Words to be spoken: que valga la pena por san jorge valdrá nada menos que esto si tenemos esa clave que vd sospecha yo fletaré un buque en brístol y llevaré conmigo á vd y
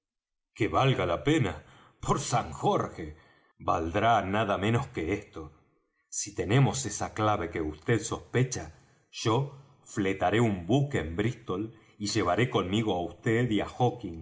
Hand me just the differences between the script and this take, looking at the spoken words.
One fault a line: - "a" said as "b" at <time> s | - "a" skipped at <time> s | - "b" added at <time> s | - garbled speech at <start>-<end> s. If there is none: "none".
none